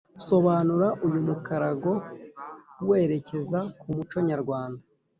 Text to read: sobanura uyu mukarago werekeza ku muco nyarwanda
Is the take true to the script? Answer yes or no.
yes